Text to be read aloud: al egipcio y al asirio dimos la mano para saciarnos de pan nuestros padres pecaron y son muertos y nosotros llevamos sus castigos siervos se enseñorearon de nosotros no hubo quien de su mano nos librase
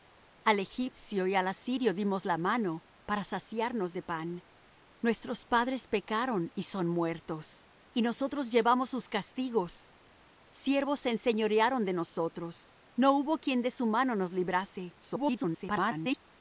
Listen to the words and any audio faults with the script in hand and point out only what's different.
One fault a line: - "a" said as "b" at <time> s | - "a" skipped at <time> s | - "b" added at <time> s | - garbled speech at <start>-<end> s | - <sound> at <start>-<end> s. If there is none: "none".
- garbled speech at 15.0-16.2 s